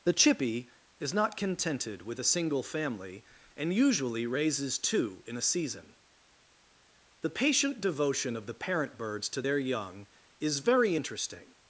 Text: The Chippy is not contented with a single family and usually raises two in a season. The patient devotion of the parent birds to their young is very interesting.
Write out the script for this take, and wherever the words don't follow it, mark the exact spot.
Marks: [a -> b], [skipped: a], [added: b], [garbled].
The Chippy is not contented with a single family and usually raises two in a season. The patient devotion of the parent birds to their young is very interesting.